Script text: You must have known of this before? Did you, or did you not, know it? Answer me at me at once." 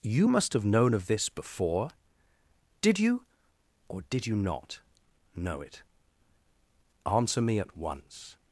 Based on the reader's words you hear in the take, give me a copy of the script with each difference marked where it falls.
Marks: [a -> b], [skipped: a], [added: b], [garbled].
You must have known of this before? Did you, or did you not, know it? Answer me at [skipped: me at] once."